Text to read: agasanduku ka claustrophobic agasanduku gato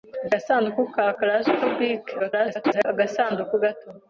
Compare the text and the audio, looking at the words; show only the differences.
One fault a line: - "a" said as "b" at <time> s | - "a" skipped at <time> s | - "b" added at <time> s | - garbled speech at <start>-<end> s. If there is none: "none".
- garbled speech at 2.2-2.8 s